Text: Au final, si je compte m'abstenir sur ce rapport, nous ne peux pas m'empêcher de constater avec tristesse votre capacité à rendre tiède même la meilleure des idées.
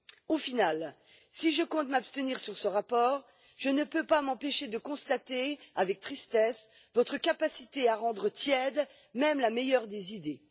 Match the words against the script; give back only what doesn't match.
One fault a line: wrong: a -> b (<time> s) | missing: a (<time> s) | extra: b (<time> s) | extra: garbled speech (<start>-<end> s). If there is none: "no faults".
wrong: nous -> je (3.6 s)